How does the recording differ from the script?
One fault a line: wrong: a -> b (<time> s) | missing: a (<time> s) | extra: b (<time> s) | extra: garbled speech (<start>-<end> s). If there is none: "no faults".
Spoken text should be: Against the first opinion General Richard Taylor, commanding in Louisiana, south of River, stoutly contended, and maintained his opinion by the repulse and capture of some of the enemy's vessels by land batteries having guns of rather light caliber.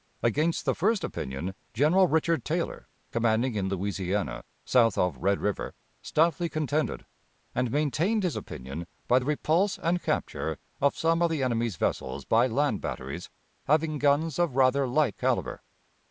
extra: Red (5.2 s)